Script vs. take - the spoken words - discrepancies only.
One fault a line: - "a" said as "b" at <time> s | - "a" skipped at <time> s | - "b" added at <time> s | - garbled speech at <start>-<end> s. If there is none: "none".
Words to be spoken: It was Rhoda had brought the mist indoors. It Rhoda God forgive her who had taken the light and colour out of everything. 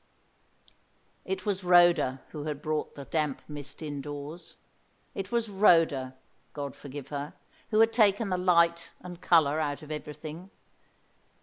- "who" added at 2.3 s
- "damp" added at 3.0 s
- "was" added at 5.3 s